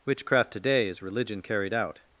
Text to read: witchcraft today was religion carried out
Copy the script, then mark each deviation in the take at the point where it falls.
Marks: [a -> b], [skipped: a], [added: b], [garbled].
witchcraft today [was -> is] religion carried out